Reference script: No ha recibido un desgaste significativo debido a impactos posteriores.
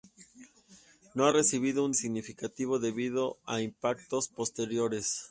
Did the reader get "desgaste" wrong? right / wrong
wrong